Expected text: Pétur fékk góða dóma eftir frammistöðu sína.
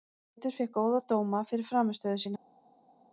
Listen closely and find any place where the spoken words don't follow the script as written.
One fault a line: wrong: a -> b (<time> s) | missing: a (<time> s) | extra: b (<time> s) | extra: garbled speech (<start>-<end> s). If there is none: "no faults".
wrong: eftir -> fyrir (1.5 s)